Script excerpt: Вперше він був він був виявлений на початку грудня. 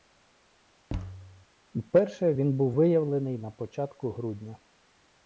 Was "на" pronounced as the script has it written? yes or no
yes